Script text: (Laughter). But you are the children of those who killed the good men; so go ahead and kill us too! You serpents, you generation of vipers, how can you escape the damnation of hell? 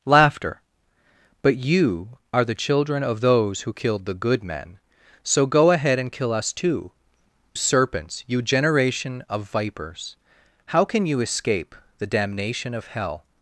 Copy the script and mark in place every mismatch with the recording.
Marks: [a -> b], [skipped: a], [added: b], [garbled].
(Laughter). But you are the children of those who killed the good men; so go ahead and kill us too! [skipped: You] serpents, you generation of vipers, how can you escape the damnation of hell?